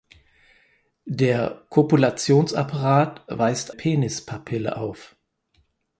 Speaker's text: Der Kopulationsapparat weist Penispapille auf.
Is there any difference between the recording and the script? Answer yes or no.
no